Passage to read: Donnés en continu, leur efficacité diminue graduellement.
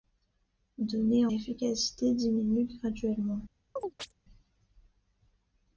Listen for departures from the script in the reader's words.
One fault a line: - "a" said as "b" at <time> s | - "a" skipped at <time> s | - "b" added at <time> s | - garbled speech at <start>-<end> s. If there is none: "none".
- "en continu leur" skipped at 1.3 s